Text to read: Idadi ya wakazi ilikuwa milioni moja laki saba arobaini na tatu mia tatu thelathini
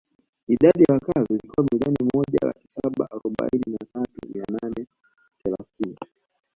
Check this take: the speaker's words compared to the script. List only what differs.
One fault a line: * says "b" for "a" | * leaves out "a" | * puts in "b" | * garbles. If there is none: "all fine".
* says "nane" for "tatu"